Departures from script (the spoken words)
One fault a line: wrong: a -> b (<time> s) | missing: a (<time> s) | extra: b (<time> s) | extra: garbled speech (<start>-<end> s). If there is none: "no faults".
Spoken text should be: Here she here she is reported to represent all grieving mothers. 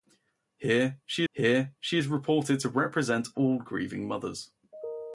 no faults